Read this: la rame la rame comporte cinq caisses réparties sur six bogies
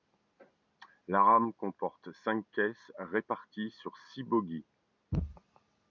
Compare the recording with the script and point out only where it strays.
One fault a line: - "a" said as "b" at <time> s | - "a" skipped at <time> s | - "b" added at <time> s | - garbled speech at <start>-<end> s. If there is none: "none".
- "la rame" skipped at 1.5 s